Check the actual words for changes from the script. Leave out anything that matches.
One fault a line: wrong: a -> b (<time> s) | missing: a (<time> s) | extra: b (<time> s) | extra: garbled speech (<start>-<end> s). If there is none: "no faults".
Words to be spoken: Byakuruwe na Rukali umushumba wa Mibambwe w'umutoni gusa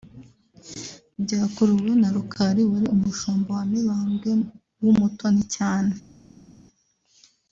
extra: wari (2.7 s)
wrong: gusa -> cyane (5.5 s)